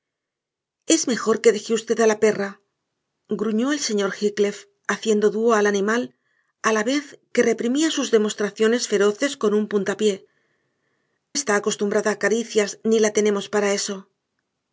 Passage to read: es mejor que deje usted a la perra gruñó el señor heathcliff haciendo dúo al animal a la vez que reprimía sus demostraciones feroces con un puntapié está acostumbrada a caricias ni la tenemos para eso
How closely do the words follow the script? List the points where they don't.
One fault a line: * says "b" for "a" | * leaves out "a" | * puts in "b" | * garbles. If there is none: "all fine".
all fine